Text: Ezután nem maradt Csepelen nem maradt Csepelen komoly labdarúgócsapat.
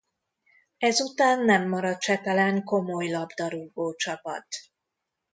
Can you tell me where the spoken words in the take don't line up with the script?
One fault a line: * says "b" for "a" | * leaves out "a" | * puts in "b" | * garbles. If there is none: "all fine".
* leaves out "nem maradt Csepelen"